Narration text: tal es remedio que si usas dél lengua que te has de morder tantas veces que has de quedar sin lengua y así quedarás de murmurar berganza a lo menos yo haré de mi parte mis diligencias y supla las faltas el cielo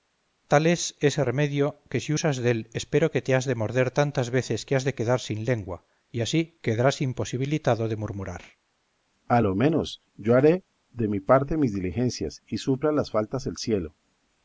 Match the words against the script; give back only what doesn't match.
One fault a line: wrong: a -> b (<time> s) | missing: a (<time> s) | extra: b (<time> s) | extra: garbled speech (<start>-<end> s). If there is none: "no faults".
extra: ese (1.0 s)
wrong: lengua -> espero (2.8 s)
extra: imposibilitado (7.1 s)